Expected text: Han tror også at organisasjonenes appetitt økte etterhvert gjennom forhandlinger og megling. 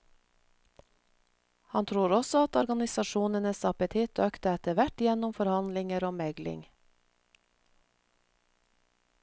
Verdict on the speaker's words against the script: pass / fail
pass